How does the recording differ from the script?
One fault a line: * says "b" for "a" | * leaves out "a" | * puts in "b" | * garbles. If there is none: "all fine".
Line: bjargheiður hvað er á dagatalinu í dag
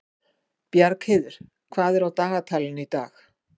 all fine